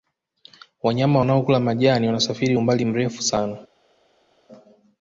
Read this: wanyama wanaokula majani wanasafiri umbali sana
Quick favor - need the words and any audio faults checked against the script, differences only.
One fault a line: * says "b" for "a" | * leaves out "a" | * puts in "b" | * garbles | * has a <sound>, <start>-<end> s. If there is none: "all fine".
* puts in "mrefu"